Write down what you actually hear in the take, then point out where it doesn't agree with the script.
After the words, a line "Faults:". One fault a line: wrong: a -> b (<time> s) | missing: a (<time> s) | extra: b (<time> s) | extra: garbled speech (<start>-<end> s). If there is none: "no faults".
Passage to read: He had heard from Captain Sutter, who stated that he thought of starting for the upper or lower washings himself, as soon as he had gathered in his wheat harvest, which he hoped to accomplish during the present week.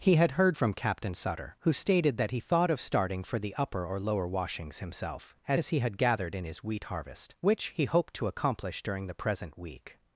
He had heard from Captain Sutter, who stated that he thought of starting for the upper or lower washings himself, as as he had gathered in his wheat harvest, which he hoped to accomplish during the present week.
Faults:
missing: soon (5.6 s)